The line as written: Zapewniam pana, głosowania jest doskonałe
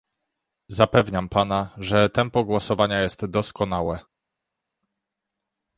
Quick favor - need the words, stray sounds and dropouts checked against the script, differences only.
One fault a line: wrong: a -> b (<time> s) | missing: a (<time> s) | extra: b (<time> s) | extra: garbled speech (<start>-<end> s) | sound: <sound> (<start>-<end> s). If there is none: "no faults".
extra: że tempo (1.8 s)